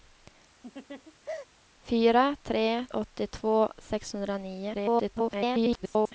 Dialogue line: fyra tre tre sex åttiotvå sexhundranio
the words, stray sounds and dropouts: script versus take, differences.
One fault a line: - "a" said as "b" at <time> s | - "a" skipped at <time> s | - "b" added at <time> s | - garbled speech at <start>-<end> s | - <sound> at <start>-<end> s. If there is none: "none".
- laugh at 0.6-1.5 s
- "tre sex" skipped at 2.9 s
- garbled speech at 4.7-6.1 s